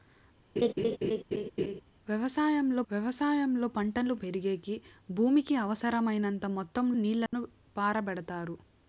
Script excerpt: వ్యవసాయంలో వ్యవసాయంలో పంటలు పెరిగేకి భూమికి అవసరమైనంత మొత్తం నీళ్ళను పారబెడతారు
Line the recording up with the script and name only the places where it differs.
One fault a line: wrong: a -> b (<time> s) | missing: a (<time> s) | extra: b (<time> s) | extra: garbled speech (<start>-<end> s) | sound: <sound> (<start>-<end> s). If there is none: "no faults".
sound: laugh (0.6-1.8 s)
sound: dropout (7.3-7.3 s)